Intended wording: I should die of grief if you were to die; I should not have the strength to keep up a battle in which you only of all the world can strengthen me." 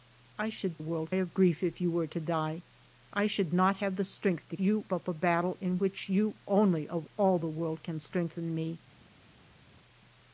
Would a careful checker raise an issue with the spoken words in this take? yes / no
yes